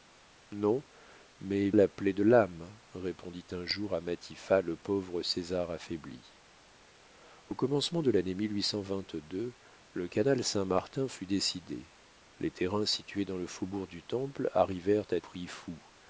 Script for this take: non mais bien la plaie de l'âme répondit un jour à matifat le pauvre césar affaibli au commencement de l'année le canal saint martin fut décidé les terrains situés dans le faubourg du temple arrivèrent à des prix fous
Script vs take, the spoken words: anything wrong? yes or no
yes